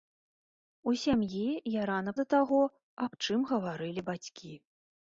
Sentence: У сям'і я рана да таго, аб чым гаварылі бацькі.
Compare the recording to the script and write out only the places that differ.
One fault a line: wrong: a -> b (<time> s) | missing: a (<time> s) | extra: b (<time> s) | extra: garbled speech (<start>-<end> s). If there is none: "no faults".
no faults